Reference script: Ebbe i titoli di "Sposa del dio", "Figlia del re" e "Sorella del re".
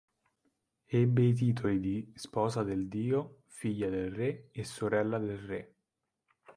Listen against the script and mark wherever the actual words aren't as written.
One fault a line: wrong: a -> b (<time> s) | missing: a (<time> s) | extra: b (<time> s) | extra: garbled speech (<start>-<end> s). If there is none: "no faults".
no faults